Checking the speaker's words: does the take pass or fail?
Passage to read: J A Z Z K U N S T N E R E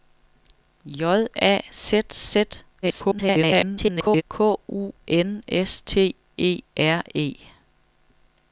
fail